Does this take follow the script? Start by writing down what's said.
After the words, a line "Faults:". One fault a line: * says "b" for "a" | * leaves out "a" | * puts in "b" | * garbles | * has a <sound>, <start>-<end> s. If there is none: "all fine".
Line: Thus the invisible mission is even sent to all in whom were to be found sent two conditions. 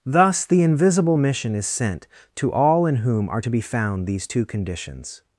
Thus the invisible mission is sent to all in whom are to be found these two conditions.
Faults:
* leaves out "even"
* says "are" for "were"
* says "these" for "sent"